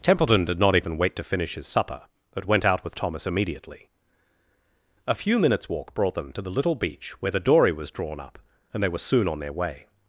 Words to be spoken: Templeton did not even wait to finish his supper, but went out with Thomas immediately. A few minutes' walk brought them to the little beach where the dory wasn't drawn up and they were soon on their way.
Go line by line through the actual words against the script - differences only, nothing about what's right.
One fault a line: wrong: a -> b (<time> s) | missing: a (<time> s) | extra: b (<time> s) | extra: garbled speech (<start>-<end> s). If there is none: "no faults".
wrong: wasn't -> was (7.7 s)